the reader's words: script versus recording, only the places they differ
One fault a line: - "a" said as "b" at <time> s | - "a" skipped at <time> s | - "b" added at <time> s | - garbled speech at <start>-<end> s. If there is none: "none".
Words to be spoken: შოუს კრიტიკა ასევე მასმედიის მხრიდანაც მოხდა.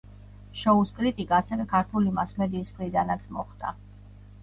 - "ქართული" added at 1.7 s